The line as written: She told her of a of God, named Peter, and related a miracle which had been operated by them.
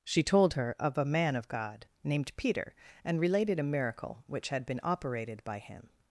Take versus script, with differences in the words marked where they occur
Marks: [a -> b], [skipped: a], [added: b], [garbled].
She told her of a [added: man] of God, named Peter, and related a miracle which had been operated by [them. -> him]